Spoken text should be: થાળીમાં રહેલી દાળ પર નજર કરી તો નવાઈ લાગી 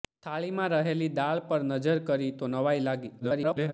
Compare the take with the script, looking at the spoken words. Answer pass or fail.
fail